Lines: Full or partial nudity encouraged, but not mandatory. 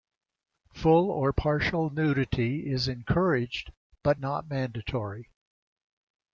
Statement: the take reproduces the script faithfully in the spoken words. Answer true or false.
false